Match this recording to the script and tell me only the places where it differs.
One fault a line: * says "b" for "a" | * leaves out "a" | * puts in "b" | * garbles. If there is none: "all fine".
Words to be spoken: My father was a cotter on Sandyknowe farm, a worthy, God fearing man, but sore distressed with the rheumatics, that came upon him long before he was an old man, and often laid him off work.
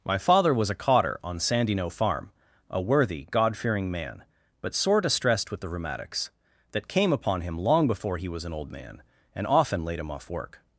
all fine